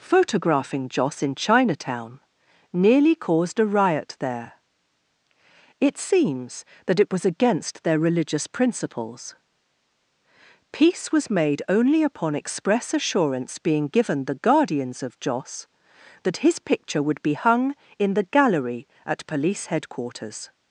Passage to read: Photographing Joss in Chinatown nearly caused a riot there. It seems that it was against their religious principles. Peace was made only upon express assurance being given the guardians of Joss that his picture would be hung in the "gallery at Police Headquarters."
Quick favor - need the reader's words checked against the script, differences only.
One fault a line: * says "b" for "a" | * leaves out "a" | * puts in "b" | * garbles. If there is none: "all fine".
all fine